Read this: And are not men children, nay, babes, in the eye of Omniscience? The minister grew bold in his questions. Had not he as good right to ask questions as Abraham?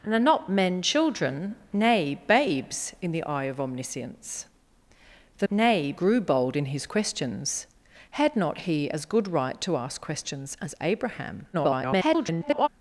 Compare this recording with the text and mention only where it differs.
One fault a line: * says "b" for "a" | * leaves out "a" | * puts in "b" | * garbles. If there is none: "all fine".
* says "nay" for "minister"
* garbles